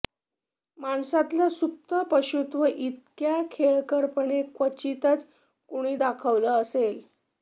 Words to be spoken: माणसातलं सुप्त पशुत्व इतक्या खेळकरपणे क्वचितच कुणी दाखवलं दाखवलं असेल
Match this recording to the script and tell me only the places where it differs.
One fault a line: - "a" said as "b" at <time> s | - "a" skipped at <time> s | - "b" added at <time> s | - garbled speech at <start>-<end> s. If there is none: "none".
- "दाखवलं" skipped at 6.6 s